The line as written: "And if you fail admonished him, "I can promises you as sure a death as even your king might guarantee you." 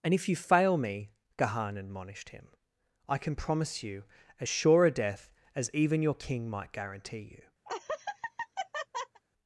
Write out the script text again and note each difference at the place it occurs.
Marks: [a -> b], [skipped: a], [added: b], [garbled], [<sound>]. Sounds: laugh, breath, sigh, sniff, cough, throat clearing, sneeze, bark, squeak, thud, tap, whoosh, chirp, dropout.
"And if you fail [added: me Gahan] admonished him, "I can [promises -> promise] you as sure a death as even your king might guarantee you." [laugh]